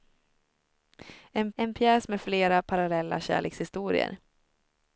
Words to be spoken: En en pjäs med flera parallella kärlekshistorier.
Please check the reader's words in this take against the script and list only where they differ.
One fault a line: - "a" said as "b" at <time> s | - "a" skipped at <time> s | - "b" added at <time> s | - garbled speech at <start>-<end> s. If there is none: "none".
none